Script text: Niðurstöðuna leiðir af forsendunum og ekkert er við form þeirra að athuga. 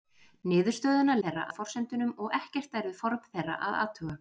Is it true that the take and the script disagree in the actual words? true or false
true